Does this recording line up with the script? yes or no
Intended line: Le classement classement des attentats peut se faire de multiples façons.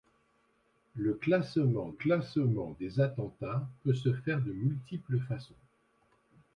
yes